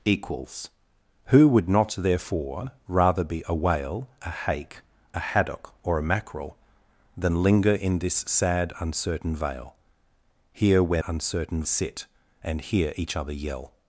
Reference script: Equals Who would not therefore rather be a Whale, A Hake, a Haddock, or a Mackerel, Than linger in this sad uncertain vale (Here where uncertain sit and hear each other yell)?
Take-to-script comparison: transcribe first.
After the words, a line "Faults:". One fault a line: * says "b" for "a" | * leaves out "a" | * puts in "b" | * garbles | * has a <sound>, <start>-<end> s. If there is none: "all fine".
Equals Who would not therefore rather be a Whale, A Hake, a Haddock, or a Mackerel, Than linger in this sad uncertain vale (Here where uncertain sit and hear each other yell)?
Faults:
all fine